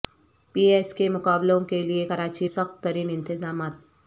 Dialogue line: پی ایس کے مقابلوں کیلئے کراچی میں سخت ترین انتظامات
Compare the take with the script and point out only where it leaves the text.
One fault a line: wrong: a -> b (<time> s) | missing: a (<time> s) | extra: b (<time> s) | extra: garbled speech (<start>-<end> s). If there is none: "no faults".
missing: میں (2.5 s)